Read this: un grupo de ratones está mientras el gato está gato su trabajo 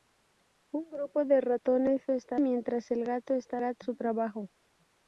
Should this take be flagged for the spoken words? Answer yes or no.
no